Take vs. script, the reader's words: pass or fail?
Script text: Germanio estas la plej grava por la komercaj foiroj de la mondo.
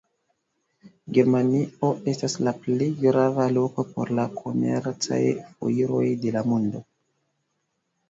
fail